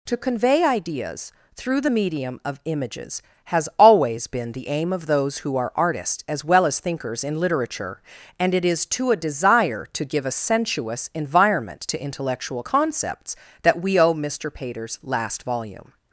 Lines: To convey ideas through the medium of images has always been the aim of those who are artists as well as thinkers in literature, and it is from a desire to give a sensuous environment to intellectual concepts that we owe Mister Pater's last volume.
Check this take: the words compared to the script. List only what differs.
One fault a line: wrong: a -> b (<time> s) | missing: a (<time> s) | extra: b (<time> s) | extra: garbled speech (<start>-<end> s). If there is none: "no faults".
wrong: from -> to (8.9 s)